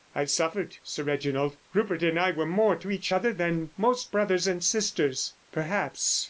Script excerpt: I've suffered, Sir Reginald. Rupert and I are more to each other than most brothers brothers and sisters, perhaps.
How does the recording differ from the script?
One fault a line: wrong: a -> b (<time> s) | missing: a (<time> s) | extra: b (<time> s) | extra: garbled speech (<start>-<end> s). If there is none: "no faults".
wrong: are -> were (2.3 s)
missing: brothers (4.5 s)